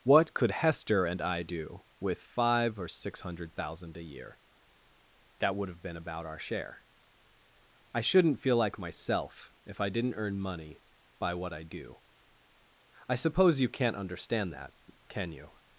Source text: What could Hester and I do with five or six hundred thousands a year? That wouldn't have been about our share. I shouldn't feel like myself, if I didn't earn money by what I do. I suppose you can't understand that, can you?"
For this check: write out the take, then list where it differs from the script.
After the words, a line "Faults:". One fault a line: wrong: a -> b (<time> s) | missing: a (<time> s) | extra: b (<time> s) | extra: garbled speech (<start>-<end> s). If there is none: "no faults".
What could Hester and I do with five or six hundred thousand a year? That would have been about our share. I shouldn't feel like myself, if I didn't earn money by what I do. I suppose you can't understand that, can you?"
Faults:
wrong: thousands -> thousand (3.5 s)
wrong: wouldn't -> would (5.5 s)